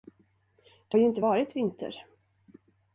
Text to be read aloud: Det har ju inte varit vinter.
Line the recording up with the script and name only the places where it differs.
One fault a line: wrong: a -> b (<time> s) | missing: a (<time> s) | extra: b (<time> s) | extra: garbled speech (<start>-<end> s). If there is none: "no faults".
missing: har (1.0 s)